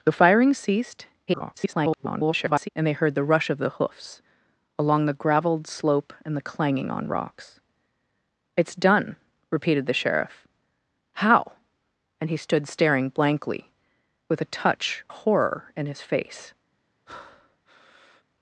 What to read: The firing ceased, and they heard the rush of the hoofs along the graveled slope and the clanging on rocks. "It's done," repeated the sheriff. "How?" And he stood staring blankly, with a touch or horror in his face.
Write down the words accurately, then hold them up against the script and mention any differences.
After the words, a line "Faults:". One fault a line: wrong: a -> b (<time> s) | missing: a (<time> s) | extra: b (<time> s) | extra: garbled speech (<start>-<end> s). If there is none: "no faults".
The firing ceased, [garbled] and they heard the rush of the hoofs along the graveled slope and the clanging on rocks. "It's done," repeated the sheriff. "How?" And he stood staring blankly, with a touch horror in his face.
Faults:
extra: garbled speech (1.3-2.7 s)
missing: or (15.0 s)